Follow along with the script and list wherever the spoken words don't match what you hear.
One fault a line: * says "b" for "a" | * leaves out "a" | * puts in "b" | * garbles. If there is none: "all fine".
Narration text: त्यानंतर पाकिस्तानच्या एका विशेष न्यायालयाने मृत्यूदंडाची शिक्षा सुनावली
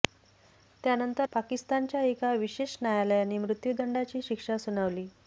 all fine